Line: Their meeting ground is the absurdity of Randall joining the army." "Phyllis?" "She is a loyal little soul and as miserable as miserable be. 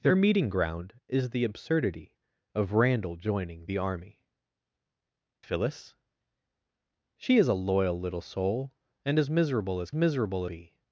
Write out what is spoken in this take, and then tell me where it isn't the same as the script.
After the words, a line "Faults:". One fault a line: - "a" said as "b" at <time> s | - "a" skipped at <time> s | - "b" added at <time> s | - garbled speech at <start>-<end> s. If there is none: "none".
Their meeting ground is the absurdity of Randall joining the army." "Phyllis?" "She is a loyal little soul and as miserable as miserable be.
Faults:
none